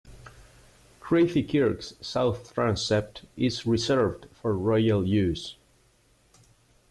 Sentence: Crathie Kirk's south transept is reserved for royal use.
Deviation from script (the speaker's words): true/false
false